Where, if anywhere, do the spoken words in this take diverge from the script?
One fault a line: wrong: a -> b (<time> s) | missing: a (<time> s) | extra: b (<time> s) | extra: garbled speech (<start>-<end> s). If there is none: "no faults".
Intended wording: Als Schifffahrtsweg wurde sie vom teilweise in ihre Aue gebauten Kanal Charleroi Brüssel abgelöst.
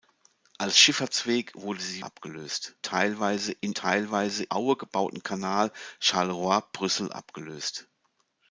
wrong: vom -> abgelöst (2.0 s)
wrong: ihre -> teilweise (3.7 s)